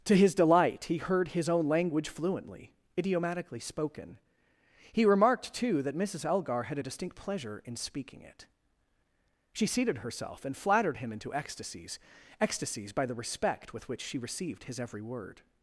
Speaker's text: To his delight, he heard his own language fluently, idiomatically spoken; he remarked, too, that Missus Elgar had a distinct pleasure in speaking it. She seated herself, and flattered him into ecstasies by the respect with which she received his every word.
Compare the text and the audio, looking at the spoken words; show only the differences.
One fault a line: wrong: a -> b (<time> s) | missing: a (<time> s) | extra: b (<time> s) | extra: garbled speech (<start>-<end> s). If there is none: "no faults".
extra: ecstasies (12.4 s)